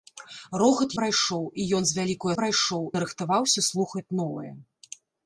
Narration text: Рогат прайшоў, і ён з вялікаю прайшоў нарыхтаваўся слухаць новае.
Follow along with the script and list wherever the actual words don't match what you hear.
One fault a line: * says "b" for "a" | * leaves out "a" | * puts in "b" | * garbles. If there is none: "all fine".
all fine